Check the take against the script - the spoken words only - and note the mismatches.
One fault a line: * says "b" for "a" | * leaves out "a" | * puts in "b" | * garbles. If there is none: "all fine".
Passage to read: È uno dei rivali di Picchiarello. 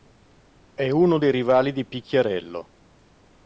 all fine